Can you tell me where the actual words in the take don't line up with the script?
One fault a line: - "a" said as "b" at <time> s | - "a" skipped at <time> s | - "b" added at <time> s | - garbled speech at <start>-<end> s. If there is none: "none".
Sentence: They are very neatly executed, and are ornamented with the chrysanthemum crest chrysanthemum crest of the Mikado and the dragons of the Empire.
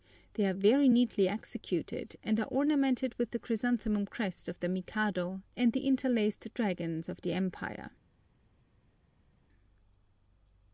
- "chrysanthemum crest" skipped at 4.5 s
- "interlaced" added at 5.9 s